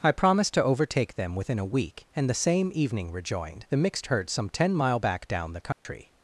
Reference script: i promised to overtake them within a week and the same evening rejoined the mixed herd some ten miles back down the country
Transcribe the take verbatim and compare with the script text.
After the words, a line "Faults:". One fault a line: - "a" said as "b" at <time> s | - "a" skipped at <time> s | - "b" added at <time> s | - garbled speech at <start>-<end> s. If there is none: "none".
i promised to overtake them within a week and the same evening rejoined the mixed herd some ten mile back down the country
Faults:
- "miles" said as "mile" at 4.7 s